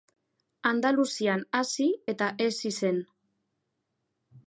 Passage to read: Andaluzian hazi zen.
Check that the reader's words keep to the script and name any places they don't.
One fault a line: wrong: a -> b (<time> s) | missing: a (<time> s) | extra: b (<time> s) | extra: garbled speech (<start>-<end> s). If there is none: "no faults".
extra: eta hezi (2.2 s)